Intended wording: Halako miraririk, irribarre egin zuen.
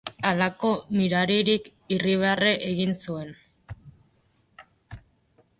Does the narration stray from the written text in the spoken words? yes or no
no